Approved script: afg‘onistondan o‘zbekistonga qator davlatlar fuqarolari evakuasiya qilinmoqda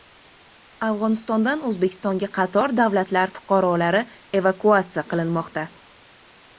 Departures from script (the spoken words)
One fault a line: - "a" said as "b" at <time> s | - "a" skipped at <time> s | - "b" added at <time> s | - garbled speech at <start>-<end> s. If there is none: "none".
none